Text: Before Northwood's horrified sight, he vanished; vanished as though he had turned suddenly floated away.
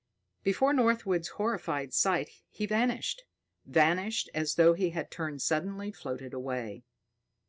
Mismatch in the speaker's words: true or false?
false